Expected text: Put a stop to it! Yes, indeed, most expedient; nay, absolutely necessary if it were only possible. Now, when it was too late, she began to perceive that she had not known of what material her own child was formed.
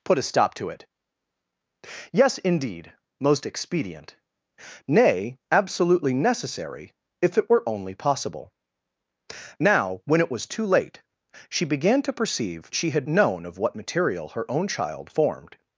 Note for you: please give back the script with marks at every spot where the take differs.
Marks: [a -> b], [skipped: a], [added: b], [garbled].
Put a stop to it! Yes, indeed, most expedient; nay, absolutely necessary if it were only possible. Now, when it was too late, she began to perceive [skipped: that] she had [skipped: not] known of what material her own child [skipped: was] formed.